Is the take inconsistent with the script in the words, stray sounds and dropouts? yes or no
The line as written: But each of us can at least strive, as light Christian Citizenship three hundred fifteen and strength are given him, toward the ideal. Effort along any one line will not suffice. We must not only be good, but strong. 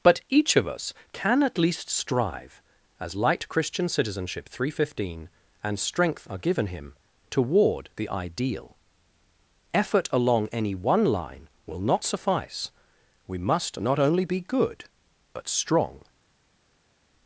no